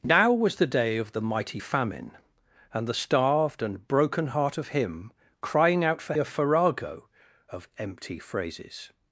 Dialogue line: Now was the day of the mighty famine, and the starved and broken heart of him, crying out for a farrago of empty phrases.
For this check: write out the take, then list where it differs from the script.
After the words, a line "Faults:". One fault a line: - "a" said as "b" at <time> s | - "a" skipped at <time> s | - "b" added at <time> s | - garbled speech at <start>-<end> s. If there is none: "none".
Now was the day of the mighty famine, and the starved and broken heart of him, crying out for a farrago of empty phrases.
Faults:
none